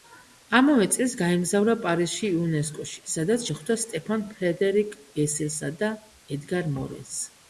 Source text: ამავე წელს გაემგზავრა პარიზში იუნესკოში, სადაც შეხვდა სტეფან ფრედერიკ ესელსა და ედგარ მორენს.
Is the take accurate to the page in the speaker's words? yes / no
yes